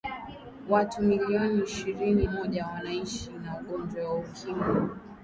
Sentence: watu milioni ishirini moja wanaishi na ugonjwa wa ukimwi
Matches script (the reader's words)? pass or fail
pass